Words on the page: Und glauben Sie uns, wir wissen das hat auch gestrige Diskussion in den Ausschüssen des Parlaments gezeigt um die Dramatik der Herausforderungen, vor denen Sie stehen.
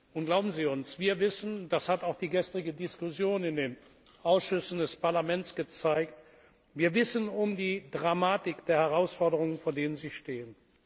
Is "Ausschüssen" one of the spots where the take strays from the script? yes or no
no